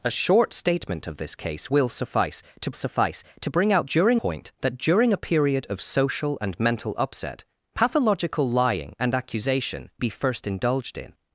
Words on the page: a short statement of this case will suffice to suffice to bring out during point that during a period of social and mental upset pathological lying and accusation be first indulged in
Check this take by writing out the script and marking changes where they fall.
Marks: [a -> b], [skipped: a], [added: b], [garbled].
a short statement of this case will suffice to suffice to bring out during point that during a period of social and mental upset pathological lying and accusation be first indulged in